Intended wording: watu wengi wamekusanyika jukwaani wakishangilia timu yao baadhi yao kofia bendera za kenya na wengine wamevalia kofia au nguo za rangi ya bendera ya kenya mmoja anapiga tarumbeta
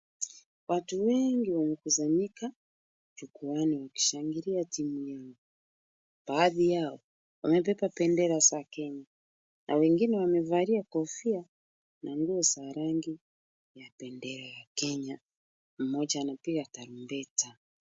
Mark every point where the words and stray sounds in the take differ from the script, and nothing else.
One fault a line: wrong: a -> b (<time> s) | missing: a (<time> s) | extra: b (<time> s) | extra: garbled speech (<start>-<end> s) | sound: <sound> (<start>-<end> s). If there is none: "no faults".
wrong: kofia -> wamebeba (7.4 s)
wrong: au -> na (12.0 s)